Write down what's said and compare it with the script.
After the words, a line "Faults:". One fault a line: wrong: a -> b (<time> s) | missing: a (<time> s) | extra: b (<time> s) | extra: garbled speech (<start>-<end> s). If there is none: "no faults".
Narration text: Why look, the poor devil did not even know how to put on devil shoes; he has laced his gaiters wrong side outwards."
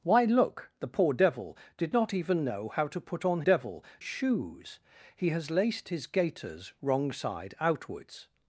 Why look, the poor devil did not even know how to put on devil shoes; he has laced his gaiters wrong side outwards."
Faults:
no faults